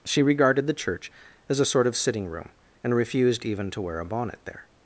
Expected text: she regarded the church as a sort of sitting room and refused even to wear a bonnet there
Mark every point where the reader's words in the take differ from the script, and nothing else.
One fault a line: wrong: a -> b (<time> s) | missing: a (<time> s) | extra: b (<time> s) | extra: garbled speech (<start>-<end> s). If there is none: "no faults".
no faults